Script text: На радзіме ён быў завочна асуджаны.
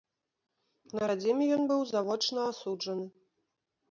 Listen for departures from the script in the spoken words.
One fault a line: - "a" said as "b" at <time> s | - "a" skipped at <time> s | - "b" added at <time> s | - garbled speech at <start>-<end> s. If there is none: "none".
none